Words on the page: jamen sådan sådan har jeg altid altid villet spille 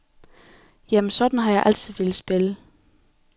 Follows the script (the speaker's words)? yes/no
no